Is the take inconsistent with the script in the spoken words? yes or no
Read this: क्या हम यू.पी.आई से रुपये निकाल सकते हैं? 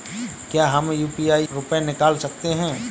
yes